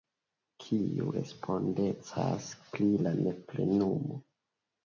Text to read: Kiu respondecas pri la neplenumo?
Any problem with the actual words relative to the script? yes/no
no